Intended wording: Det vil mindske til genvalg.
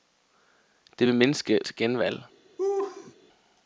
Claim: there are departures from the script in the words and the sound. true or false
true